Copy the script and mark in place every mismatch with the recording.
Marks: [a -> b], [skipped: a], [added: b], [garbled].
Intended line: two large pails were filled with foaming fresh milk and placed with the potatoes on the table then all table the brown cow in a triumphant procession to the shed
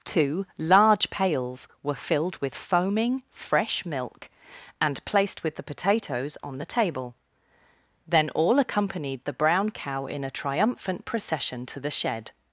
two large pails were filled with foaming fresh milk and placed with the potatoes on the table then all [table -> accompanied] the brown cow in a triumphant procession to the shed